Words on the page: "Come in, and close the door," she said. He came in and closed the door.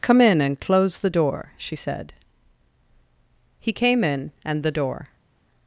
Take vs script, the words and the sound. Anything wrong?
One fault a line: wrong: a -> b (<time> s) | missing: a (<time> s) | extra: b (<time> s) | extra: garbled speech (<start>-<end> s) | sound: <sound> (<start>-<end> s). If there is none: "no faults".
missing: closed (4.6 s)